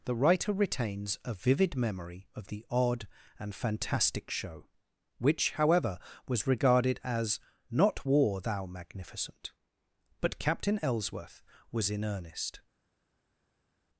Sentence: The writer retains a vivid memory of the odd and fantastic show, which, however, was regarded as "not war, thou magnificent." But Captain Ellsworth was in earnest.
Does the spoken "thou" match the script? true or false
true